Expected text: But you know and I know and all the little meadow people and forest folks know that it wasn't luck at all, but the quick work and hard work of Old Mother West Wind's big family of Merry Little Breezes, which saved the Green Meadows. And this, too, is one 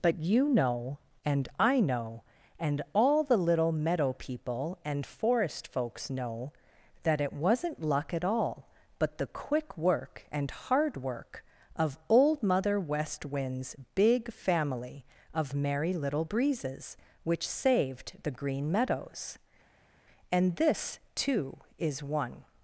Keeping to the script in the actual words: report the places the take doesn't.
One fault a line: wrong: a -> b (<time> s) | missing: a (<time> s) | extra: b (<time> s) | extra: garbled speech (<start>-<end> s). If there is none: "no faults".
no faults